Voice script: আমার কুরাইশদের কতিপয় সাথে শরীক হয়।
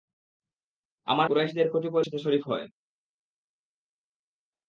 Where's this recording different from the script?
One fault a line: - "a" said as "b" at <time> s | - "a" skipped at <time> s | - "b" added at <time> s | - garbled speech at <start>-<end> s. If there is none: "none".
none